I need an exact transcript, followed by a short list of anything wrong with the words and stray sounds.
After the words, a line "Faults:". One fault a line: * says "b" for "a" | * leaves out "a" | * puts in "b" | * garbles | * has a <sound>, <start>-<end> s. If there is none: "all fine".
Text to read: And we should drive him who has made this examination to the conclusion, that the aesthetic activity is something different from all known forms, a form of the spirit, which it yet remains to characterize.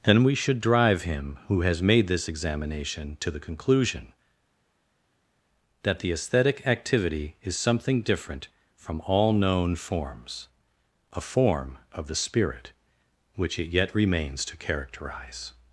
And we should drive him who has made this examination to the conclusion, that the aesthetic activity is something different from all known forms, a form of the spirit, which it yet remains to characterize.
Faults:
all fine